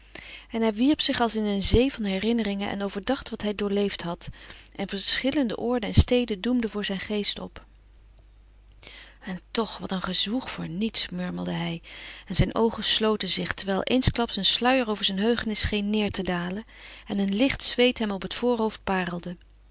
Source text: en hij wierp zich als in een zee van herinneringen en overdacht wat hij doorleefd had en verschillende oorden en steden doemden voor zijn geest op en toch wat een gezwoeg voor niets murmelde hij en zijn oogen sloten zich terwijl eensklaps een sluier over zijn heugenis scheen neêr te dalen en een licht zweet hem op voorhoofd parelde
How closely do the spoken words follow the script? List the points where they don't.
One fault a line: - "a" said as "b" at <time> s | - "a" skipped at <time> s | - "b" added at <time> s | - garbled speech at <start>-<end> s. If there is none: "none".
- "het" added at 18.2 s